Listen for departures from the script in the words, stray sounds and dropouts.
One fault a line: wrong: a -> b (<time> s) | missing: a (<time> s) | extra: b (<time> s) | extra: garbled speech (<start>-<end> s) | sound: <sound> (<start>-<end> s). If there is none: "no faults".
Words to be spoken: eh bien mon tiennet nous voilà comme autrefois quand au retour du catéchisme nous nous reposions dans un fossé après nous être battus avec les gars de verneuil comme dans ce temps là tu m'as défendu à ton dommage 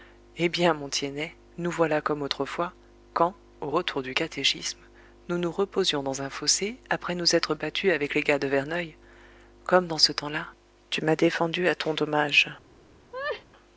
sound: laugh (13.1-13.4 s)